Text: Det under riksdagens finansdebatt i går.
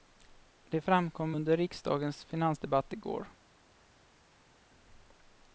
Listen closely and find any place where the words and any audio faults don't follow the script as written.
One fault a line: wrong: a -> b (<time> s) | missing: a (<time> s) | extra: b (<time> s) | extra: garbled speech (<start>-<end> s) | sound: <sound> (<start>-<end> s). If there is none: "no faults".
extra: framkom (0.8 s)